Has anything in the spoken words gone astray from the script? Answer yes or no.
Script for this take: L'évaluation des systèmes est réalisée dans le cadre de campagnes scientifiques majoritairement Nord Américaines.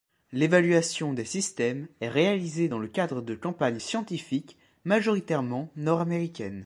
no